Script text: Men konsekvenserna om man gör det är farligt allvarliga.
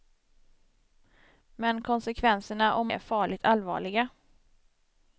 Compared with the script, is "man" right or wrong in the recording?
wrong